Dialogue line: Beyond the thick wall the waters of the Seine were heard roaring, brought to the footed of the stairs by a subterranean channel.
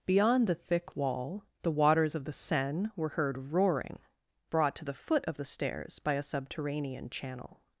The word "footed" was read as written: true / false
false